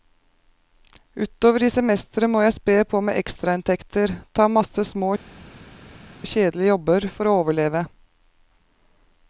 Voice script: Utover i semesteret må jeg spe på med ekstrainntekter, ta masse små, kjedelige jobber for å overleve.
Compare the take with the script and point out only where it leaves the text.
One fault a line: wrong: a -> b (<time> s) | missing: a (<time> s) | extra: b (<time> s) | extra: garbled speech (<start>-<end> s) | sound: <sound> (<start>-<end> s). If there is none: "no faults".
no faults